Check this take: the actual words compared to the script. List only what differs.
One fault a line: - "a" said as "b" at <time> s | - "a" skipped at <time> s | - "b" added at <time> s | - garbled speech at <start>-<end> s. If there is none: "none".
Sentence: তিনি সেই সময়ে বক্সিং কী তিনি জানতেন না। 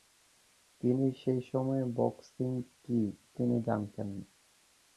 none